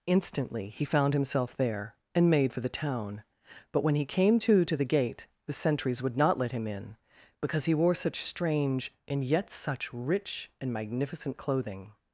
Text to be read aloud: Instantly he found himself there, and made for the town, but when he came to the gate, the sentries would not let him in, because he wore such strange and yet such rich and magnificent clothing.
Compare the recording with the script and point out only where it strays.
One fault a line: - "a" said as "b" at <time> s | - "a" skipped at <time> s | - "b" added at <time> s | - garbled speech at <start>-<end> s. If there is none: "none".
- "to" added at 4.6 s